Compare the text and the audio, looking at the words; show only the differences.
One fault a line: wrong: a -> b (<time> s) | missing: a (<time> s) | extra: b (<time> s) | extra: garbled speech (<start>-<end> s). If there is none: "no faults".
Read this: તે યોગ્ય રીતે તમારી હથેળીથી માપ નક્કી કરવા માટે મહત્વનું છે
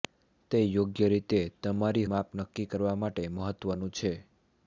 missing: હથેળીથી (2.0 s)